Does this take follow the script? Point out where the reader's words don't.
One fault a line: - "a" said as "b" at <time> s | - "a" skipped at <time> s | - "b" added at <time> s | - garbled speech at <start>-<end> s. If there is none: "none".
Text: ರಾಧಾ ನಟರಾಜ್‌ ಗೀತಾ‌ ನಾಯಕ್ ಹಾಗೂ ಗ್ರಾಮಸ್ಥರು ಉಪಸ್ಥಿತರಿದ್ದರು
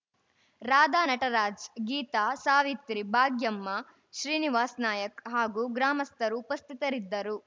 - "ಸಾವಿತ್ರಿ ಭಾಗ್ಯಮ್ಮ ಶ್ರೀನಿವಾಸ್" added at 2.4 s